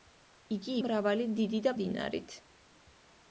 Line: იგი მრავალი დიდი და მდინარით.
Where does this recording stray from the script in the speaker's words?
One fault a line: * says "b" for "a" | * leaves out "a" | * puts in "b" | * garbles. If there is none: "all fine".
all fine